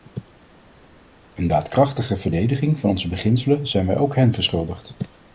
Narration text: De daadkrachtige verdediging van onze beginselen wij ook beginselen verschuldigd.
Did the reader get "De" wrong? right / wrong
wrong